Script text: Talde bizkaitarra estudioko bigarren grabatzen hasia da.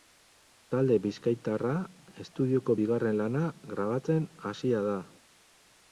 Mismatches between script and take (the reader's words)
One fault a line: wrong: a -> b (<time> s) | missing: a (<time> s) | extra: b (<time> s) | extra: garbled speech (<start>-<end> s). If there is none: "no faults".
extra: lana (3.2 s)